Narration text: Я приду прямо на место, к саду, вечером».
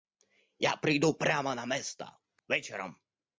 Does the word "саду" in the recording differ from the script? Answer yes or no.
yes